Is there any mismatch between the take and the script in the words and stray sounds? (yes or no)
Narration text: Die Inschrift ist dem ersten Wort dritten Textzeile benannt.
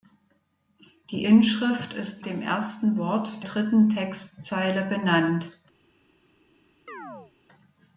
yes